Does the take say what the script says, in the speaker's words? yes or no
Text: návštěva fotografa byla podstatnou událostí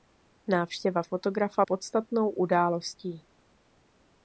no